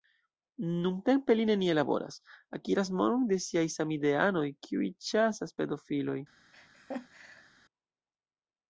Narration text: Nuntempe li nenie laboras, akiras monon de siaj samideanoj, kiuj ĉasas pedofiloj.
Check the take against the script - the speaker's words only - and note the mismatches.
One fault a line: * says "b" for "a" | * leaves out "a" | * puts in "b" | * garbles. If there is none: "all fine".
all fine